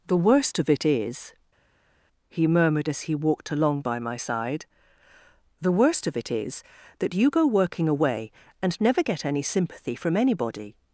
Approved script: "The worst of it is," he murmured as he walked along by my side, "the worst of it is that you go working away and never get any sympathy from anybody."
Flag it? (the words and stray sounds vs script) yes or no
no